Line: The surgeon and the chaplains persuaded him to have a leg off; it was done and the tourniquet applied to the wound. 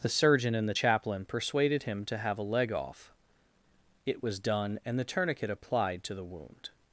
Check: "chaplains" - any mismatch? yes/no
yes